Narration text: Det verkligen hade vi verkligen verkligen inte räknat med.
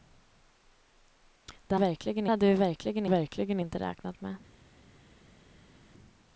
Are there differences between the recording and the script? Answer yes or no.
no